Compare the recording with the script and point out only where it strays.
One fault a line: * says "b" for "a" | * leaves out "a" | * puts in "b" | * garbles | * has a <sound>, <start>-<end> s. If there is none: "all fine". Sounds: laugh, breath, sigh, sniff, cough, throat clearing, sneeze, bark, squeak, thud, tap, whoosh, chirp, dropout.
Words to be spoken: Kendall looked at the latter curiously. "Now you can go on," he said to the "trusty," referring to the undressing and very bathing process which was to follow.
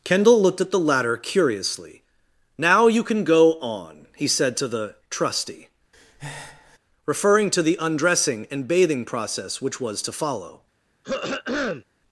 * has a breath, 5.9-6.8 s
* leaves out "very"
* has a throat clearing, 11.0-11.8 s